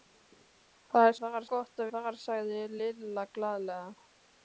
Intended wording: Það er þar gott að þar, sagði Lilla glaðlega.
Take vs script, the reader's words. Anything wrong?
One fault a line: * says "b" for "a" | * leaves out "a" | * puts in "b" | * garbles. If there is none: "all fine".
all fine